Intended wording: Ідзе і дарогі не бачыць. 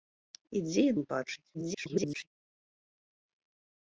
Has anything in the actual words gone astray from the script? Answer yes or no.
yes